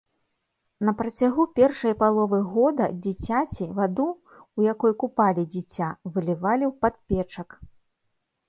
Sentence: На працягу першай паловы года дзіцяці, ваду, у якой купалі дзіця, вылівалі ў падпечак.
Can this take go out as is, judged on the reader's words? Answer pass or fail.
pass